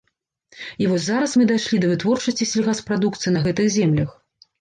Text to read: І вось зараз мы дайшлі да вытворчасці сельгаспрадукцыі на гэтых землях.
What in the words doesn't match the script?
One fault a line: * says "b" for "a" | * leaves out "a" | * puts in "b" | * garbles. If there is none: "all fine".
all fine